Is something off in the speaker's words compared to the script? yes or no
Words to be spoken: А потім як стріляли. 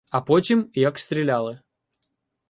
no